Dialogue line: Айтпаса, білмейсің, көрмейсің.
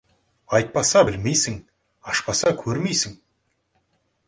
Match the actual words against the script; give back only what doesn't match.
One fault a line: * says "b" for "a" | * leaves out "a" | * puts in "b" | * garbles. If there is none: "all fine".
* puts in "ашпаса"